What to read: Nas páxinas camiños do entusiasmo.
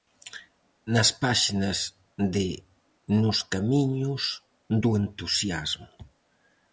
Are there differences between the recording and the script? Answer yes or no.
yes